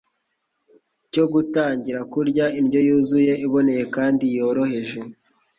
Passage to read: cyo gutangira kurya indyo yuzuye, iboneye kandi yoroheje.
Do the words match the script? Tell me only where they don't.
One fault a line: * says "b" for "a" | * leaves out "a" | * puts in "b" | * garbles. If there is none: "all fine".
all fine